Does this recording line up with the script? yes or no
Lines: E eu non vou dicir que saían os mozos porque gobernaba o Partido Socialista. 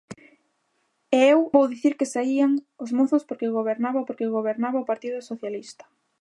no